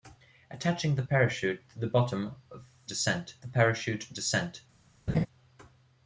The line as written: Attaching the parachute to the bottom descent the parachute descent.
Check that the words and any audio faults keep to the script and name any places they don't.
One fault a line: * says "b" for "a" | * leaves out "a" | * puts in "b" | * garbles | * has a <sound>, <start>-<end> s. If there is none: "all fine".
* has a laugh, 5.1-5.3 s